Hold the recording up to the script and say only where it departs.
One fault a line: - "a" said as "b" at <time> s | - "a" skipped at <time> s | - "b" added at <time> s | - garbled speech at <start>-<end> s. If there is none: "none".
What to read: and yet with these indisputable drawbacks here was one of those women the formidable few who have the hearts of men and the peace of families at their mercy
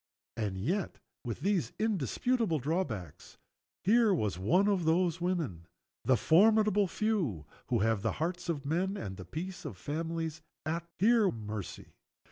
- "their" said as "here" at 11.0 s